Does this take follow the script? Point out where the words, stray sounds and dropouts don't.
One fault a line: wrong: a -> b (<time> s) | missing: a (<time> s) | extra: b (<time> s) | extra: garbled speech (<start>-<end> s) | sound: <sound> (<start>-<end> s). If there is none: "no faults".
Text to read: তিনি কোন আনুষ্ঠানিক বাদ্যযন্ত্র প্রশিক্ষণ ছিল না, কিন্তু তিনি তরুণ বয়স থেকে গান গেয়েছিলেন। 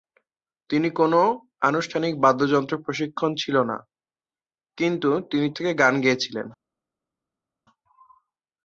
missing: তরুণ বয়স (5.5 s)